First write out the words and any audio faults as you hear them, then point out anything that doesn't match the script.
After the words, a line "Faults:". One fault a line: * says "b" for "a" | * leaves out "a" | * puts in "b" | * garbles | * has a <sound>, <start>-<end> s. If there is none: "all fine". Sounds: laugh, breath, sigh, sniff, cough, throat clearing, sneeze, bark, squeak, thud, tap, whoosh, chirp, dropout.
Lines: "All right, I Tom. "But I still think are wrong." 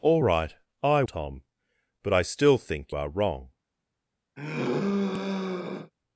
"All right, I Tom. "But I still think are wrong."
Faults:
* has a sigh, 4.4-5.9 s